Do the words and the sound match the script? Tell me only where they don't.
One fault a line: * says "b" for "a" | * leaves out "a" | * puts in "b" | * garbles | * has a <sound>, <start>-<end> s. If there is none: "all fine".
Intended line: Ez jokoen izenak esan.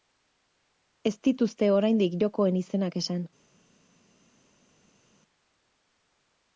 * puts in "dituzte oraindik"